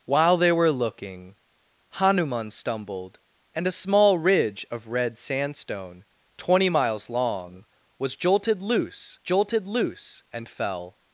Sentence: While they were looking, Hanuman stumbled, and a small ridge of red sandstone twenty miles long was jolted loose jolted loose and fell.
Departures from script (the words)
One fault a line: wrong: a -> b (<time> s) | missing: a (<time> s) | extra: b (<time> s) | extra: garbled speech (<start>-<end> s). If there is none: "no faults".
no faults